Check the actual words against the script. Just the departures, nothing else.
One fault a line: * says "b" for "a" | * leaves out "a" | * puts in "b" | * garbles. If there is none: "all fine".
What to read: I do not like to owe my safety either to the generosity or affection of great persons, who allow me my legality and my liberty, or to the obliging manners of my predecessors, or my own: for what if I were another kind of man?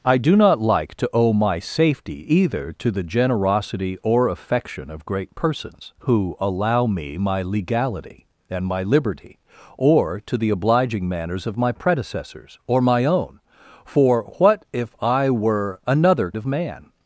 * leaves out "kind"